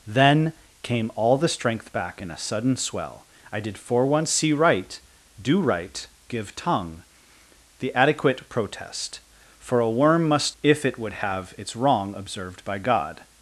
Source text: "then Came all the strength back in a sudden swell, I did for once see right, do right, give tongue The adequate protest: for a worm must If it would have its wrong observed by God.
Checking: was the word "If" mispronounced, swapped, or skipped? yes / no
no